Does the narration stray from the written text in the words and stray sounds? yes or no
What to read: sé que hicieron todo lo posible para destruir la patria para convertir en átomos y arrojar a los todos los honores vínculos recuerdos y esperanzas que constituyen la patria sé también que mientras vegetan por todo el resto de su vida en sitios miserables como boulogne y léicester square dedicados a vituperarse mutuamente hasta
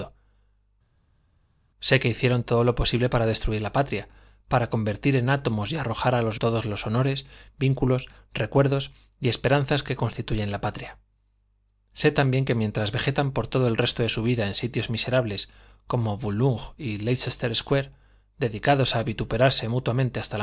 no